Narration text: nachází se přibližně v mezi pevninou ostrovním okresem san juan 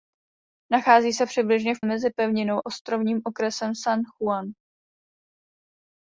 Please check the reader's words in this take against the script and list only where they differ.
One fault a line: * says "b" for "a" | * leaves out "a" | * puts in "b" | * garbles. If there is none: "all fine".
all fine